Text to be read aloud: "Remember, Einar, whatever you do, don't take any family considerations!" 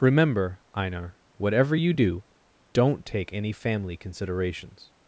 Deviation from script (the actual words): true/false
false